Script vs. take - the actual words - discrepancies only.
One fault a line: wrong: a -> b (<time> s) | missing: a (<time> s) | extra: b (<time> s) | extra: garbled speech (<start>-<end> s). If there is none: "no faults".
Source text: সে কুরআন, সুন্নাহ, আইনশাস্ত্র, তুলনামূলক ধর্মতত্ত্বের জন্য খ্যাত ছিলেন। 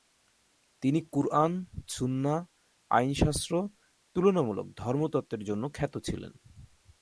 wrong: সে -> তিনি (0.8 s)